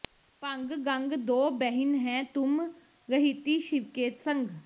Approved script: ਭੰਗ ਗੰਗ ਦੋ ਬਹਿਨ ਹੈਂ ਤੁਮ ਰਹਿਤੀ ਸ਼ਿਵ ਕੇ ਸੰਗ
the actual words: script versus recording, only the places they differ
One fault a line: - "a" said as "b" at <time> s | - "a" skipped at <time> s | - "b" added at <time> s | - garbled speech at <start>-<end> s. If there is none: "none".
none